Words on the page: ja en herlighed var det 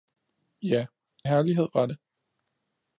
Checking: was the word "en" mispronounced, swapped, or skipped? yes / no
yes